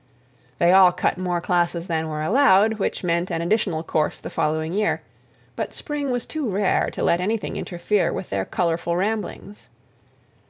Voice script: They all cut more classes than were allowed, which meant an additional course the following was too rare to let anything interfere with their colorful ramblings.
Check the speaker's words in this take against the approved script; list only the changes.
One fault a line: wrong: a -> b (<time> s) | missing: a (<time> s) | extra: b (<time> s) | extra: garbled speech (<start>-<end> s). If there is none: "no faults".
extra: year but spring (4.7 s)